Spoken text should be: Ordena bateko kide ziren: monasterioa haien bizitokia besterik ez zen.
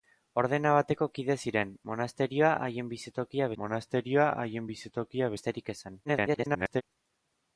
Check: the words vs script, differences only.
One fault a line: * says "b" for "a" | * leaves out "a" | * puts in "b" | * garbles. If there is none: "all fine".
* puts in "monasterioa haien bizitokia"
* garbles